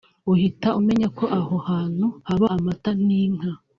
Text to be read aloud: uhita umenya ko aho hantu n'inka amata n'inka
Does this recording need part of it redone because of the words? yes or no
yes